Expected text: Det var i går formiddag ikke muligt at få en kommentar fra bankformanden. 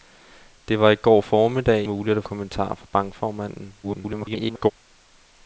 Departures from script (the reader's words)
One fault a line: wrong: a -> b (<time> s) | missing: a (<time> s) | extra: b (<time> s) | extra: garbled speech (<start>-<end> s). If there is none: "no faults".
missing: ikke (1.8 s)
missing: få en (2.2 s)
extra: garbled speech (3.8-4.7 s)